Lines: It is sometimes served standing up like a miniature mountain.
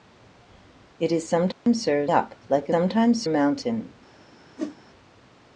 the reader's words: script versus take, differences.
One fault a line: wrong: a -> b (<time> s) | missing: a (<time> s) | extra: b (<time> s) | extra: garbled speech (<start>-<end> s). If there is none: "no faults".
missing: standing (2.1 s)
wrong: miniature -> sometimes (2.7 s)